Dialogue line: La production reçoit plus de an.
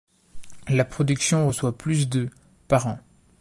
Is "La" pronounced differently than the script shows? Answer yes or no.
no